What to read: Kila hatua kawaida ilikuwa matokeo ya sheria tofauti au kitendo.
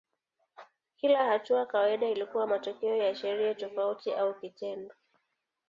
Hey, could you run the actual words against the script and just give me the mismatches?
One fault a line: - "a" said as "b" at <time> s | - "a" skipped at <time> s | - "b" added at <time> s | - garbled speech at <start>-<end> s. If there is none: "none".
none